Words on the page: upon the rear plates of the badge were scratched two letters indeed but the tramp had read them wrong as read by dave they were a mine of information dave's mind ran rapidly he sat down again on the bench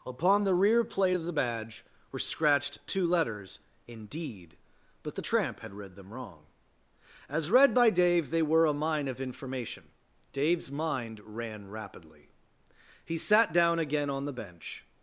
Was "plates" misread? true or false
true